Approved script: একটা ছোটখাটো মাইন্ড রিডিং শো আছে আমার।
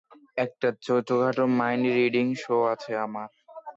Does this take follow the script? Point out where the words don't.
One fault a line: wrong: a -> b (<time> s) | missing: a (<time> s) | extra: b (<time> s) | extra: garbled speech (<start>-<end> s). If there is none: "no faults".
no faults